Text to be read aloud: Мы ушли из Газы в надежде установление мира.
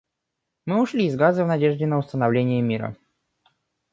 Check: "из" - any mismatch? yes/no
no